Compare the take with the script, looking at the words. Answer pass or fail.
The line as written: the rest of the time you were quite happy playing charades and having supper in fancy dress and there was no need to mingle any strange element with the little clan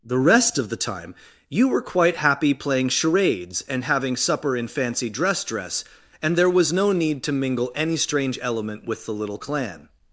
fail